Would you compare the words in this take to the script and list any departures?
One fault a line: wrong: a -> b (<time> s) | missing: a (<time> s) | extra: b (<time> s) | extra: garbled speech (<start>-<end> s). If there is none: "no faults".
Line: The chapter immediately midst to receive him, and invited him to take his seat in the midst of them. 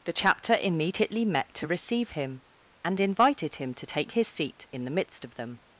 wrong: midst -> met (1.3 s)